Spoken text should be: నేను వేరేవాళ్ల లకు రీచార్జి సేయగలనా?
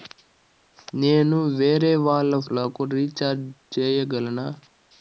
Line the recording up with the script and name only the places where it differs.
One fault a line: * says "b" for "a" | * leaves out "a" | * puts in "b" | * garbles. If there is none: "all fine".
all fine